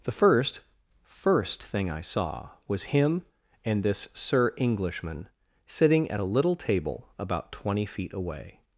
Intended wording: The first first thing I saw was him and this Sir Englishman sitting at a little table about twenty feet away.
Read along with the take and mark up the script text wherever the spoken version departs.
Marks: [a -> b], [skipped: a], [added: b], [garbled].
The first first thing I saw was him and this Sir Englishman sitting at a little table about twenty feet away.